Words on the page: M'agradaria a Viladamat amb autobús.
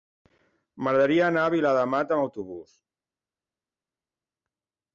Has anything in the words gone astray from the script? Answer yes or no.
yes